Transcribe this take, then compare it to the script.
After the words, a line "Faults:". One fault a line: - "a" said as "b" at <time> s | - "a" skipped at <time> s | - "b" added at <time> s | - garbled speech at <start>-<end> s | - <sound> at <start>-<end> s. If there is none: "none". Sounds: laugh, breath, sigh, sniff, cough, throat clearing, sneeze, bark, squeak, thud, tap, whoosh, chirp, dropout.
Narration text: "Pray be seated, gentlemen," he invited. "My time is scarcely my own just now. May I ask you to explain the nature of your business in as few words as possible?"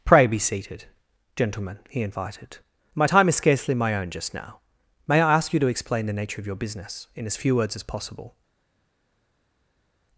"Pray be seated, gentlemen," he invited. "My time is scarcely my own just now. May I ask you to explain the nature of your business in as few words as possible?"
Faults:
none